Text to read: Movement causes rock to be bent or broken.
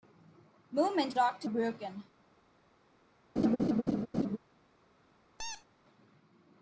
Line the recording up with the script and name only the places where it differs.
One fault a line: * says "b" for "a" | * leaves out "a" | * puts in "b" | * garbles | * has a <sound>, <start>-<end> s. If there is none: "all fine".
* leaves out "causes"
* leaves out "be bent or"
* has a laugh, 3.4-4.4 s
* has a squeak, 5.4-5.7 s